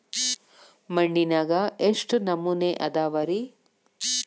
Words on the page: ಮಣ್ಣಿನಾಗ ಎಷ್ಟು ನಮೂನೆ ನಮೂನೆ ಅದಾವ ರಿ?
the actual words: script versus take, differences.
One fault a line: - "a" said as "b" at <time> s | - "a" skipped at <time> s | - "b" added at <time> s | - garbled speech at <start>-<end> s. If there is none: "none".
- "ನಮೂನೆ" skipped at 2.7 s